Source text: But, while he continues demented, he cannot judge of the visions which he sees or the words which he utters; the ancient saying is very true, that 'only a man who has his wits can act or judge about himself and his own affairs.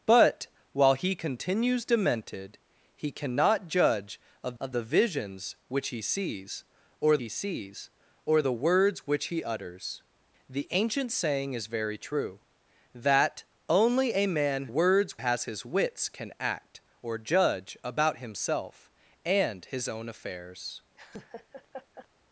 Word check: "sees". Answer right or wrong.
right